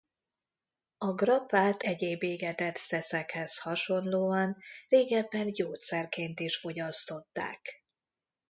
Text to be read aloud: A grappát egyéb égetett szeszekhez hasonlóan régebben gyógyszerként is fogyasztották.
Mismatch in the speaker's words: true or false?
false